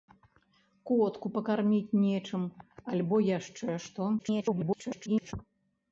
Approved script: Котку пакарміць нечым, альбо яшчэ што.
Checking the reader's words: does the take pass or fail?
fail